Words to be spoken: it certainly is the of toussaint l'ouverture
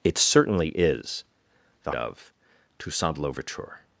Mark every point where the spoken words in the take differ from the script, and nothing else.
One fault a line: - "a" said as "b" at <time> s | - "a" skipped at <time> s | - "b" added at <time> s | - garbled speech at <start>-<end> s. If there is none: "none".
none